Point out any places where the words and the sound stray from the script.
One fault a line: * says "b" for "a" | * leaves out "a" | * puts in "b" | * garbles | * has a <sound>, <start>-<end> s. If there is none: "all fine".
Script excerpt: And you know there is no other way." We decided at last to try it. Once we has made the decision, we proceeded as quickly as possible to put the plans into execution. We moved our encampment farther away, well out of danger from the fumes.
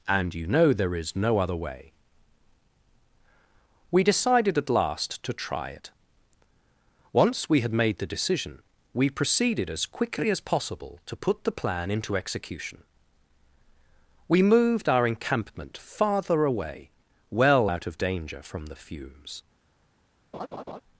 * says "had" for "has"
* says "plan" for "plans"
* has a laugh, 20.3-20.8 s